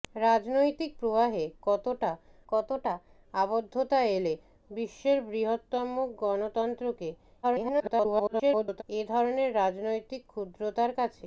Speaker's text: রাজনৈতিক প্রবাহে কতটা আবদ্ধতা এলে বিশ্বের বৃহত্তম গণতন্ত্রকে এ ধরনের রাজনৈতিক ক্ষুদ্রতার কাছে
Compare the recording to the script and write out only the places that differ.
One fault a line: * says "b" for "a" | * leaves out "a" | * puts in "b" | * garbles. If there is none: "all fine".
* puts in "কতটা"
* garbles